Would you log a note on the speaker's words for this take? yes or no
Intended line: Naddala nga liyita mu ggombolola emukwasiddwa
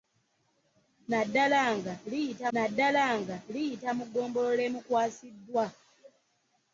yes